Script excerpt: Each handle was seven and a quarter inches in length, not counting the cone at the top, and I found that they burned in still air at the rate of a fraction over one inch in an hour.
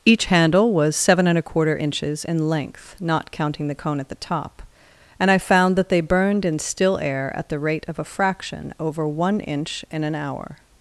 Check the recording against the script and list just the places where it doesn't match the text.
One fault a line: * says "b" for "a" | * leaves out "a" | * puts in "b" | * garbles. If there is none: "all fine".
all fine